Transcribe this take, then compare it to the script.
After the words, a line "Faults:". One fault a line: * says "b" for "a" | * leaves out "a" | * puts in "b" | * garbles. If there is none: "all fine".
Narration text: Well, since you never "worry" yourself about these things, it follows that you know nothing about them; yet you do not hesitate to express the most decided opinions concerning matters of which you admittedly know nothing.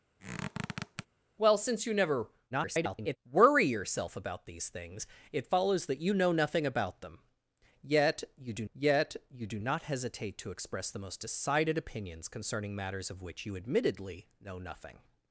Well, since you never [garbled] "worry" yourself about these things, it follows that you know nothing about them; yet you do yet you do not hesitate to express the most decided opinions concerning matters of which you admittedly know nothing.
Faults:
* garbles
* puts in "yet you do"